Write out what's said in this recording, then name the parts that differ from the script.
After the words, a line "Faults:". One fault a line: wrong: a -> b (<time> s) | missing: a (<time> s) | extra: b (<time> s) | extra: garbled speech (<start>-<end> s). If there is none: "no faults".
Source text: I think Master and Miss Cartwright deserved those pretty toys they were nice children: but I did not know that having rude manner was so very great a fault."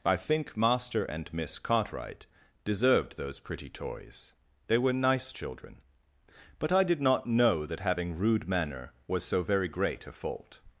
I think Master and Miss Cartwright deserved those pretty toys they were nice children: but I did not know that having rude manner was so very great a fault."
Faults:
no faults